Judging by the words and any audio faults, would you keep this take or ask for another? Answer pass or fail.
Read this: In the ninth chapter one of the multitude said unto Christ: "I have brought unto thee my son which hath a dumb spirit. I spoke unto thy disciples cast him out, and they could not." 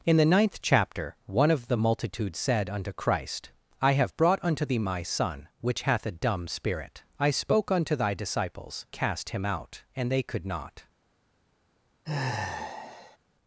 fail